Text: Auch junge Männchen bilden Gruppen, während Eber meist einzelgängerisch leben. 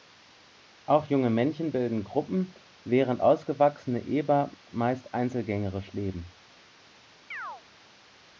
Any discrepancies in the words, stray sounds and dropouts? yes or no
yes